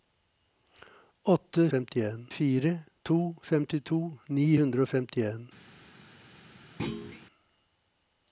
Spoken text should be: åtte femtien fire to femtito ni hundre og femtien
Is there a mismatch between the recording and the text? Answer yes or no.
no